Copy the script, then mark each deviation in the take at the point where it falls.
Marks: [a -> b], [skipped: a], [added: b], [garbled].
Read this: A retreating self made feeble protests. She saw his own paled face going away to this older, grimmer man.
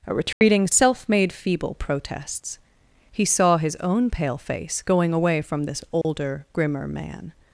A retreating self made feeble protests. [She -> He] saw his own [paled -> pale] face going away [to -> from] this older, grimmer man.